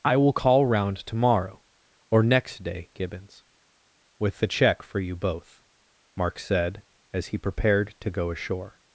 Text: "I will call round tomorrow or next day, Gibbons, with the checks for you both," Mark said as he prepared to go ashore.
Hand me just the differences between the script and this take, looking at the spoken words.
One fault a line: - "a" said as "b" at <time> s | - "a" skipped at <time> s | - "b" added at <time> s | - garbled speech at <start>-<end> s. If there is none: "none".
- "checks" said as "check" at 4.5 s